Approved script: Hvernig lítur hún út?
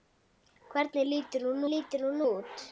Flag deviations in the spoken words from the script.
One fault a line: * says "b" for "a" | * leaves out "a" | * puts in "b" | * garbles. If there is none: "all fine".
* puts in "lítur hún"